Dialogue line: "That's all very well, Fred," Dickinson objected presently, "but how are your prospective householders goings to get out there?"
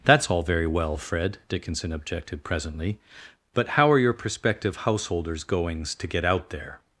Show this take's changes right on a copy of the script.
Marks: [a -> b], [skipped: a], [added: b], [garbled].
"That's all very well, Fred," Dickinson objected presently, "but how are your prospective householders goings to get out there?"